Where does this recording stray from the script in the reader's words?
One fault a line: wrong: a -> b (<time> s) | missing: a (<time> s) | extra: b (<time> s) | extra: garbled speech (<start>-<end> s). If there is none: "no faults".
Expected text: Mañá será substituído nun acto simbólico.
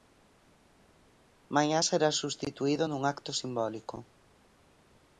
no faults